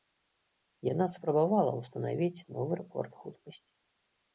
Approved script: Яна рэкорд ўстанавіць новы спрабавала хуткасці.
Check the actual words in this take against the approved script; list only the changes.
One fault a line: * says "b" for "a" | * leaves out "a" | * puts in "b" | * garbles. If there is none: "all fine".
* says "спрабавала" for "рэкорд"
* says "рэкорд" for "спрабавала"